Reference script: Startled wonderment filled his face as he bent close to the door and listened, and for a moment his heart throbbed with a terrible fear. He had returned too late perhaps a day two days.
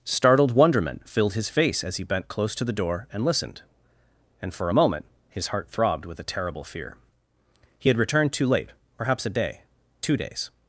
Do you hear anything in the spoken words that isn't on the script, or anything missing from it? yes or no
no